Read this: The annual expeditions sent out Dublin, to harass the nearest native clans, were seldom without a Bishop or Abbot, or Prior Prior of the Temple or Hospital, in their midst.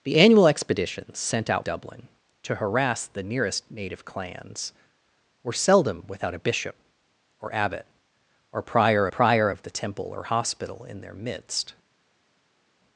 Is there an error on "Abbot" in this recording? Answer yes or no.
no